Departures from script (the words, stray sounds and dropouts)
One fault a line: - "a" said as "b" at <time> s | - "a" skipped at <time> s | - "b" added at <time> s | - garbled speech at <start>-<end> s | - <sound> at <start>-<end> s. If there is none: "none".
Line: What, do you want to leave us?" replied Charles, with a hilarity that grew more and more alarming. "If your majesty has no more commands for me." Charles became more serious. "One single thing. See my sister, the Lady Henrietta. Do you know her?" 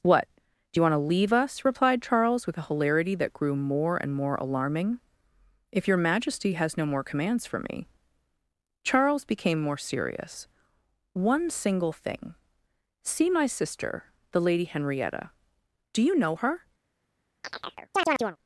- chirp at 17.4-18.4 s